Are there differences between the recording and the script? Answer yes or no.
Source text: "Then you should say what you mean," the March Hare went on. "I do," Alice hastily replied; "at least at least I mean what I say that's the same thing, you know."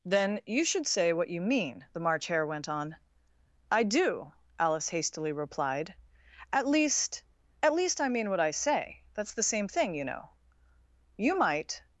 yes